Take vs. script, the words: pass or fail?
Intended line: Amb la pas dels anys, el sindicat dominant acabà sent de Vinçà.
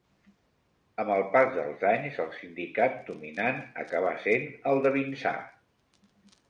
fail